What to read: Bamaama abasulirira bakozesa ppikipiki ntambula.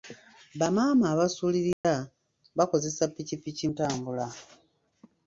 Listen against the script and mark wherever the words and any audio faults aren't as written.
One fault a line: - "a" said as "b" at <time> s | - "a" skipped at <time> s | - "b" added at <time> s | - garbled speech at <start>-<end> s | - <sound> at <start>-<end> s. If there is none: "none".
- dropout at 1.7-1.8 s